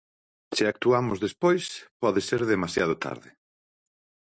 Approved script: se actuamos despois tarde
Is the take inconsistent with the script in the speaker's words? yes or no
yes